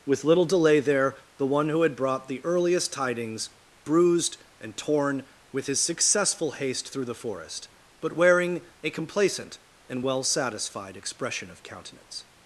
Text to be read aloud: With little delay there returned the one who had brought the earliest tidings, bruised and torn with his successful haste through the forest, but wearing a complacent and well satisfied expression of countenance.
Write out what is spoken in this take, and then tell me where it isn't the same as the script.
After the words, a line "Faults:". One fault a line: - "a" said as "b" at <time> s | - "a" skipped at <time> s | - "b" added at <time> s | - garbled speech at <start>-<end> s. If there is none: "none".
With little delay there the one who had brought the earliest tidings, bruised and torn with his successful haste through the forest, but wearing a complacent and well satisfied expression of countenance.
Faults:
- "returned" skipped at 1.1 s